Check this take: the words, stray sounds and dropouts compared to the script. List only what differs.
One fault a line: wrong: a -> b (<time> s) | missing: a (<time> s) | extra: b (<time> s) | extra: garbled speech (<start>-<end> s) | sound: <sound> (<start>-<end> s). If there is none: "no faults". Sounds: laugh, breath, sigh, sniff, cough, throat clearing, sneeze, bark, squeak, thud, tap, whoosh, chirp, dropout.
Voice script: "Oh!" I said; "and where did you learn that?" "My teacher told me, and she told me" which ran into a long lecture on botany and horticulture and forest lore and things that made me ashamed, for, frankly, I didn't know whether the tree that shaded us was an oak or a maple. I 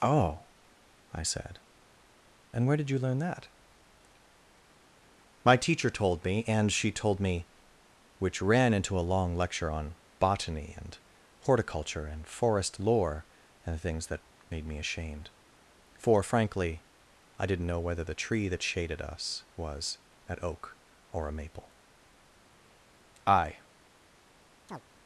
sound: chirp (24.7-24.8 s)